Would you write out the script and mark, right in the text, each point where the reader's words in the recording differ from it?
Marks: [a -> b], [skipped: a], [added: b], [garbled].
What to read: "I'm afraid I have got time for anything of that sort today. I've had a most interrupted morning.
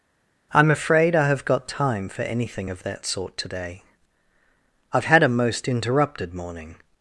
"I'm afraid I have got time for anything of that sort today. I've had a most interrupted morning.